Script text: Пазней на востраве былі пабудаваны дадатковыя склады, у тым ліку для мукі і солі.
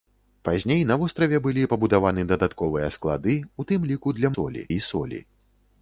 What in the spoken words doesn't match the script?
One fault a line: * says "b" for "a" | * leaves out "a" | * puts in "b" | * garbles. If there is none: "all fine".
* says "солі" for "мукі"